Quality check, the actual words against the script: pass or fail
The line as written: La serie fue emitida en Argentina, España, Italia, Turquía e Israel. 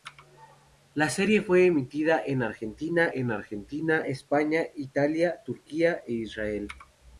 fail